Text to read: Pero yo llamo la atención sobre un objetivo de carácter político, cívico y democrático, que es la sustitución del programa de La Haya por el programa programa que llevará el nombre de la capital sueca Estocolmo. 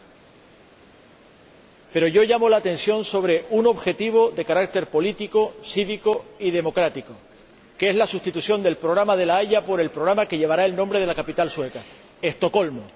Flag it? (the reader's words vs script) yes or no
yes